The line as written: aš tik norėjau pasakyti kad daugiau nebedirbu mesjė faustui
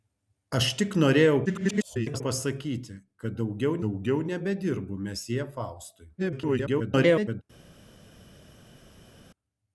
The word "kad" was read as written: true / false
true